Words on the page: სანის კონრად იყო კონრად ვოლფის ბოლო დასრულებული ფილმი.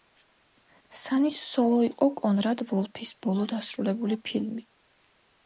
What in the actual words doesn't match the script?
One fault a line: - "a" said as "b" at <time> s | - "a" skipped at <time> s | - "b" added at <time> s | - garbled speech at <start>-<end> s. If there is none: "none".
- "კონრად" said as "სოლო" at 1.5 s